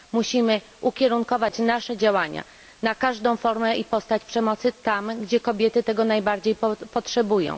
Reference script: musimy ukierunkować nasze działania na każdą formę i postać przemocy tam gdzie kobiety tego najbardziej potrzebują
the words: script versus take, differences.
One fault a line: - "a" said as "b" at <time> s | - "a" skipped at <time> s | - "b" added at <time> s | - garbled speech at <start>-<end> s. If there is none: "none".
none